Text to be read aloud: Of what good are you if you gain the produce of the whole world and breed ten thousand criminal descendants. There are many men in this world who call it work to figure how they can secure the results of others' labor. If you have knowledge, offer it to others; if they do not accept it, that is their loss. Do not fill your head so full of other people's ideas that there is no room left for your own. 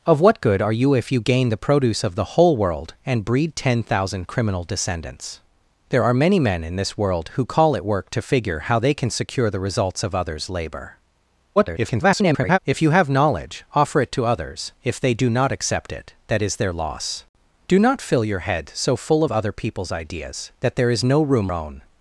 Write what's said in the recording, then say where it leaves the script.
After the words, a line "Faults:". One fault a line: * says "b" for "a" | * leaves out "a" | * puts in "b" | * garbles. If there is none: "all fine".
Of what good are you if you gain the produce of the whole world and breed ten thousand criminal descendants. There are many men in this world who call it work to figure how they can secure the results of others' labor. [garbled] If you have knowledge, offer it to others; if they do not accept it, that is their loss. Do not fill your head so full of other people's ideas that there is no room own.
Faults:
* garbles
* leaves out "left for your"